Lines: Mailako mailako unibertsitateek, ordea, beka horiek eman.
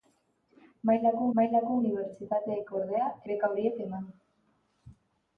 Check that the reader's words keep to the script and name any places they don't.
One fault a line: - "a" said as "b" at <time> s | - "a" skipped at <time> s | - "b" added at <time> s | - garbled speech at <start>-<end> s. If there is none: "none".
none